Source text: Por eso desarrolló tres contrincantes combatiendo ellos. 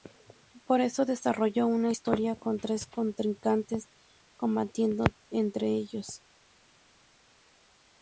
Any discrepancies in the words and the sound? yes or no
yes